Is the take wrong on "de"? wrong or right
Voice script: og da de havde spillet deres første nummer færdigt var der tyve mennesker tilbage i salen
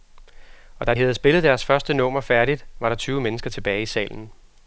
wrong